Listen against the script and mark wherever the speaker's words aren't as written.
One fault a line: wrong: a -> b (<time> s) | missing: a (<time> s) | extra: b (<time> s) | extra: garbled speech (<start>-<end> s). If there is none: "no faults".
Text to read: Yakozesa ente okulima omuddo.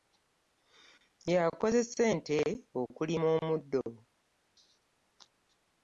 no faults